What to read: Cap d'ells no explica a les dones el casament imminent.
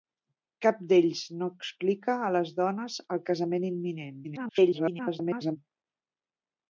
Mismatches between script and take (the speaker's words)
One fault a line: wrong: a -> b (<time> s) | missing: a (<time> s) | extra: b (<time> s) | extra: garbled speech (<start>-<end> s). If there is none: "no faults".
extra: garbled speech (4.2-5.6 s)